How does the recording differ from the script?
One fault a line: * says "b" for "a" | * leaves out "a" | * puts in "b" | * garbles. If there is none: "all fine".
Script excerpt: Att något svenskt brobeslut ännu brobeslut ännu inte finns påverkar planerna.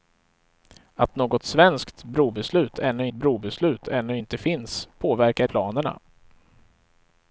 all fine